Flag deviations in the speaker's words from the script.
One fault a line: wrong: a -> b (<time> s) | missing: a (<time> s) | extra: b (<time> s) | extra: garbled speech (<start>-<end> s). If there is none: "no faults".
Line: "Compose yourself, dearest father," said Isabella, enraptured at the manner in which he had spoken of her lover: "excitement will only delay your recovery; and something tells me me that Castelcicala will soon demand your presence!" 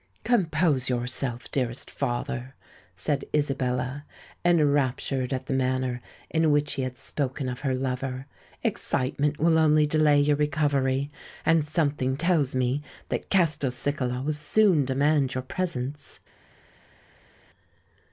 missing: me (12.8 s)